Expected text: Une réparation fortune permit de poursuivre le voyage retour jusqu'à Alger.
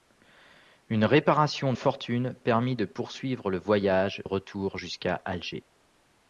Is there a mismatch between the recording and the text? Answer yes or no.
no